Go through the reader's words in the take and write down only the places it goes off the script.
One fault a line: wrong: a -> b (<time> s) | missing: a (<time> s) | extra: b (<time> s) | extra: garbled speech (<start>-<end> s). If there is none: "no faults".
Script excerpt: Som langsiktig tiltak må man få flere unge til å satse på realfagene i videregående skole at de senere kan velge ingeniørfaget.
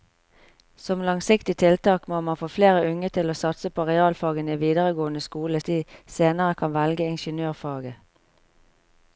no faults